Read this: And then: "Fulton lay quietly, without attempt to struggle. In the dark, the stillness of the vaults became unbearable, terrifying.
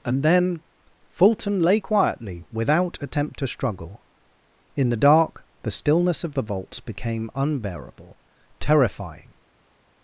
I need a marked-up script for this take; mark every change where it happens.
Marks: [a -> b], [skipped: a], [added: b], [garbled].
And then: "Fulton lay quietly, without attempt to struggle. In the dark, the stillness of the vaults became unbearable, terrifying.